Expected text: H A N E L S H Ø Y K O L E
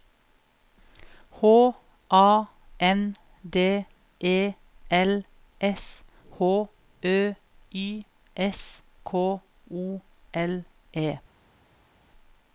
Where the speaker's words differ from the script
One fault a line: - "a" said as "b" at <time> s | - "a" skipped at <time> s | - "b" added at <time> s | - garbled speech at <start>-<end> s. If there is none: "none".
- "D" added at 3.5 s
- "S" added at 8.3 s